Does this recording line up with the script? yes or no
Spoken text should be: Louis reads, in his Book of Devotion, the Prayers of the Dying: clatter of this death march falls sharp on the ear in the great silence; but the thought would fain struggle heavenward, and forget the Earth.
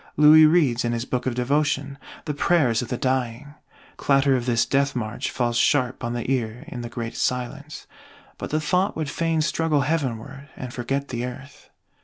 yes